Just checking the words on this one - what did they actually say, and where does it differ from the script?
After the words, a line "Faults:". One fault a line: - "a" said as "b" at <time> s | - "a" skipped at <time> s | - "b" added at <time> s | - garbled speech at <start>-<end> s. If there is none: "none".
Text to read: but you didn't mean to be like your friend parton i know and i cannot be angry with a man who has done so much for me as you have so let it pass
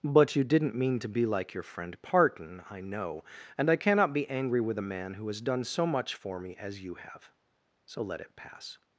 but you didn't mean to be like your friend parton i know and i cannot be angry with a man who has done so much for me as you have so let it pass
Faults:
none